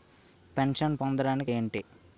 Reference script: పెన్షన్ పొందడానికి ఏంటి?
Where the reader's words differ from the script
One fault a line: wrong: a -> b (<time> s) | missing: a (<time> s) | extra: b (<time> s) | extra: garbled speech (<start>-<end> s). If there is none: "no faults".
no faults